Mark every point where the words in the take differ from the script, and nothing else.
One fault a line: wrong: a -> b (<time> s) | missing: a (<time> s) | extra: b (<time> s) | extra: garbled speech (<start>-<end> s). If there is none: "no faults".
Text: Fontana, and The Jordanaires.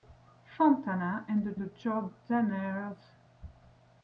extra: The (1.6 s)